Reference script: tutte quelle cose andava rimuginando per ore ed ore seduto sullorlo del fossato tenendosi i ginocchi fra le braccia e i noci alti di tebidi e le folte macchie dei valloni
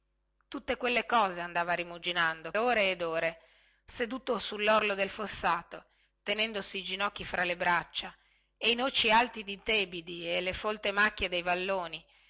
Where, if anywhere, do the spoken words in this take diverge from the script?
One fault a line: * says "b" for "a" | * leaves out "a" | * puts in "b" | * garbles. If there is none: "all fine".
* leaves out "per"